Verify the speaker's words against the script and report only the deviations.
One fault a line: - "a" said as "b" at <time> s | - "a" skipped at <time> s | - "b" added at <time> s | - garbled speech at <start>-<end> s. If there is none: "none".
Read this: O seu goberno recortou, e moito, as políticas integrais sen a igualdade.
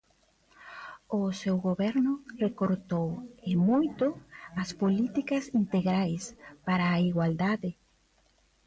- "sen" said as "para" at 6.7 s